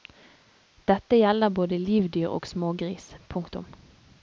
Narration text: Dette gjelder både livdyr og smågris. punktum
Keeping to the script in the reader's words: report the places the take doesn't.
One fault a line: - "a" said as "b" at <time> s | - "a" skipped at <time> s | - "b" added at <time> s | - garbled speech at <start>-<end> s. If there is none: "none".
none